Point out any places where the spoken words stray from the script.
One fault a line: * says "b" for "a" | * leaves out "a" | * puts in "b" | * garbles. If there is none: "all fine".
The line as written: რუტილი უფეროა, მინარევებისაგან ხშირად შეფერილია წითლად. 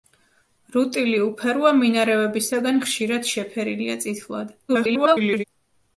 * garbles